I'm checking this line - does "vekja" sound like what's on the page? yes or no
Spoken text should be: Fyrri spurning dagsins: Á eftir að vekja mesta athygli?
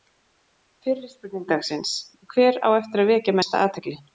yes